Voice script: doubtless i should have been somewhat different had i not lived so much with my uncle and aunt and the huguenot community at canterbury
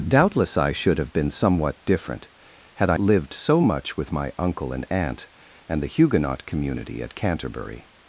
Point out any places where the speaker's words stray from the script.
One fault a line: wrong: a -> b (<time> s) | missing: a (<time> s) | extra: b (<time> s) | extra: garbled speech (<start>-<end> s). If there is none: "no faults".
missing: not (3.0 s)